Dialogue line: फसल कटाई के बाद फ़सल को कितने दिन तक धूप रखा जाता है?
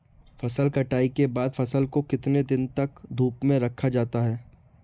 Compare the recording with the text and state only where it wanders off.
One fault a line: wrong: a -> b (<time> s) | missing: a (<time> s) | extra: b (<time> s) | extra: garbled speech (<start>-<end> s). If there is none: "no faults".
extra: में (3.4 s)